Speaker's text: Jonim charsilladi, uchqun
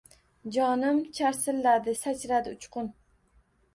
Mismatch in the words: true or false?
true